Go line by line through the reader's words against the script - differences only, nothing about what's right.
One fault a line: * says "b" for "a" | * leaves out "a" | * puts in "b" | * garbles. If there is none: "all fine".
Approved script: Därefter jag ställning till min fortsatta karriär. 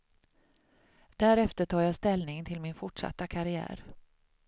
* puts in "tar"